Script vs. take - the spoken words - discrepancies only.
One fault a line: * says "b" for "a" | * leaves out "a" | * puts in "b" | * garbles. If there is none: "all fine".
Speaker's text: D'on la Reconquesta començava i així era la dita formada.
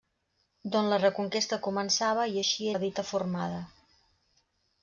* leaves out "era"